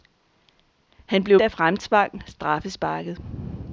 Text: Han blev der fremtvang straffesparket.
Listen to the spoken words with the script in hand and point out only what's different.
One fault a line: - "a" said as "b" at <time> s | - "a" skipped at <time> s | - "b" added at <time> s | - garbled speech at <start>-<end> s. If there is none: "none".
none